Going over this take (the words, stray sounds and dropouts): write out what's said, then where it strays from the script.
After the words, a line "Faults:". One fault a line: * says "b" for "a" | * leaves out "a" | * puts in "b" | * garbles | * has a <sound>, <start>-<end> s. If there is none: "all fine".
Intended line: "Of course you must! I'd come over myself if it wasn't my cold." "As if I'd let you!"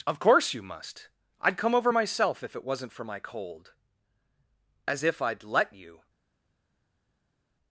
"Of course you must! I'd come over myself if it wasn't for my cold." "As if I'd let you!"
Faults:
* puts in "for"